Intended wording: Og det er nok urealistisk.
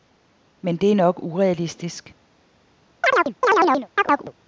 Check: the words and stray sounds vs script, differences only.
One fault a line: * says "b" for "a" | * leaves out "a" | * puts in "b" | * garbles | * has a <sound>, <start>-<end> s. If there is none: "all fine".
* says "Men" for "Og"
* has a chirp, 3.0-4.3 s